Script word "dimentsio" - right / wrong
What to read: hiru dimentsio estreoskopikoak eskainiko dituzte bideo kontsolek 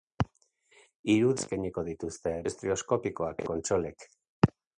wrong